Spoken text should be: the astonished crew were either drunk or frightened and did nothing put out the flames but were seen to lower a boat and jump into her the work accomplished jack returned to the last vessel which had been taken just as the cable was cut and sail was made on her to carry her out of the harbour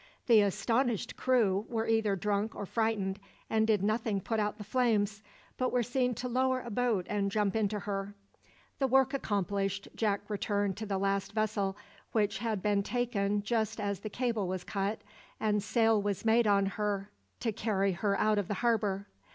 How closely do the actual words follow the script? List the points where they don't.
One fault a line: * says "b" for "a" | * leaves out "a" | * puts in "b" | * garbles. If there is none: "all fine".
all fine